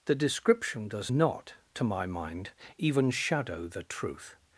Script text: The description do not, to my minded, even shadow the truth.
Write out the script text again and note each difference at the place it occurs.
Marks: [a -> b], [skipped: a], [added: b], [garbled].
The description [do -> does] not, to my [minded, -> mind] even shadow the truth.